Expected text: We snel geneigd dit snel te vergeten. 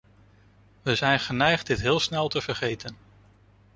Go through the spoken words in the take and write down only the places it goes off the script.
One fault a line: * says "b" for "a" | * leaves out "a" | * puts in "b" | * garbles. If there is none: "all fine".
* says "zijn" for "snel"
* puts in "heel"